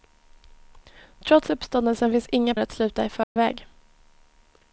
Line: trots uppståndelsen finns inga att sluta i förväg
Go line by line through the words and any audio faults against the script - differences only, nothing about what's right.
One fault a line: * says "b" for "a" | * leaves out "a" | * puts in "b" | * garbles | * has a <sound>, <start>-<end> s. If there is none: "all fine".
* has a dropout, 3.2-3.4 s